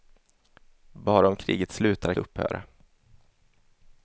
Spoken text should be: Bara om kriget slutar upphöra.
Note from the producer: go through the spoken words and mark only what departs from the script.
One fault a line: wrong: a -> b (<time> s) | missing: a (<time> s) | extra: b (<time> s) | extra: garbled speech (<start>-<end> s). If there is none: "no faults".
no faults